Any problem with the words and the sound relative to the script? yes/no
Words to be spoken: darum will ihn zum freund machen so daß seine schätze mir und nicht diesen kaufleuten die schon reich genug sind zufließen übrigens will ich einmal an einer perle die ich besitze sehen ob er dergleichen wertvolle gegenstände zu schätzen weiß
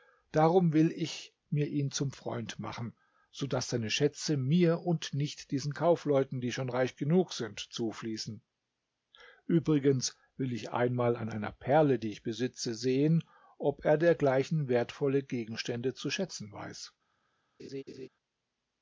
yes